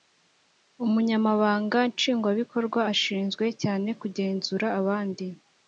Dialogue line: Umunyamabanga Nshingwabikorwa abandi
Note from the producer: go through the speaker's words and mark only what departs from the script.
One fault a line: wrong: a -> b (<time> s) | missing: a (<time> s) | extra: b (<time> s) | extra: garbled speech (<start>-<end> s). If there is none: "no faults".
extra: ashinzwe cyane kugenzura (2.9 s)